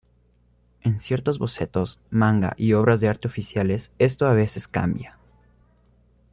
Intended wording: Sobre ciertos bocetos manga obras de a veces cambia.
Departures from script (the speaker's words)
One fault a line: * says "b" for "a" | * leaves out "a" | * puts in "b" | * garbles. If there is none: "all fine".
* says "En" for "Sobre"
* puts in "y"
* puts in "arte oficiales esto"